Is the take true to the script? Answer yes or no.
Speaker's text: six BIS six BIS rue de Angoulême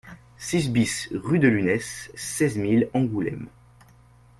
no